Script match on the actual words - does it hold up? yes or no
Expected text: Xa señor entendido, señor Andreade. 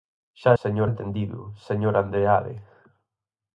yes